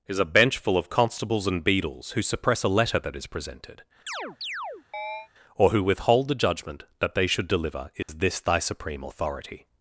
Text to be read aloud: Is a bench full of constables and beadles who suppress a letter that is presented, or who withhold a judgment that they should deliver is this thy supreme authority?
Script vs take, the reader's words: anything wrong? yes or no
yes